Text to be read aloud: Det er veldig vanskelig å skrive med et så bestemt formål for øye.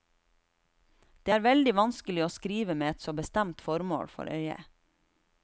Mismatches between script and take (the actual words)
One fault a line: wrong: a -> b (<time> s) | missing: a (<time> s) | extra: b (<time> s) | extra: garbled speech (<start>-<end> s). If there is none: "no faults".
no faults